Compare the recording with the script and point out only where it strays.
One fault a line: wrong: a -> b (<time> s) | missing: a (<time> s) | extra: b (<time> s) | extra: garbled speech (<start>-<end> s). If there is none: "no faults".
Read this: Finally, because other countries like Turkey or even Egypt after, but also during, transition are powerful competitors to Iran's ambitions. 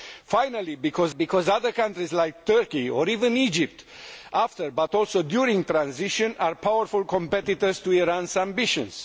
extra: because (1.1 s)